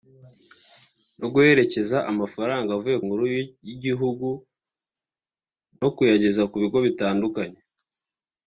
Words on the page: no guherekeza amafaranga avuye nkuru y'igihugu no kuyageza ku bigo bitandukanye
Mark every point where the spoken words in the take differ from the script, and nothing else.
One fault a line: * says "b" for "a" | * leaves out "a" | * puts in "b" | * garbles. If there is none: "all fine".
all fine